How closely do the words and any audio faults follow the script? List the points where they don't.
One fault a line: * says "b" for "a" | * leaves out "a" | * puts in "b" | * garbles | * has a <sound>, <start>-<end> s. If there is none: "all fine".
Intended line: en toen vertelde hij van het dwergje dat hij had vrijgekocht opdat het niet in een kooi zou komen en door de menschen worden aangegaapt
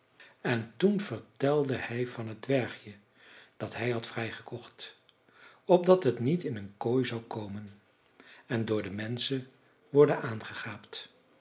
all fine